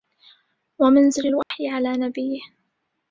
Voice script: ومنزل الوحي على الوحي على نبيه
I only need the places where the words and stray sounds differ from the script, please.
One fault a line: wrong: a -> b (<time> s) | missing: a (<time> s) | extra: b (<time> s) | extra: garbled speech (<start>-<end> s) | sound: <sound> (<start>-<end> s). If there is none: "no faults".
sound: dropout (1.4-1.5 s)
missing: الوحي على (1.9 s)